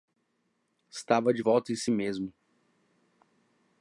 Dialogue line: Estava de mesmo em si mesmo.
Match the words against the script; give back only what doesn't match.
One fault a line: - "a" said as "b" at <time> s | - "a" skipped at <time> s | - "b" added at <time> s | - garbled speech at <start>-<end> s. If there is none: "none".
- "mesmo" said as "volta" at 1.4 s